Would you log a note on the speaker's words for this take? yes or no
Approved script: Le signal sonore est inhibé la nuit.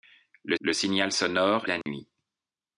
yes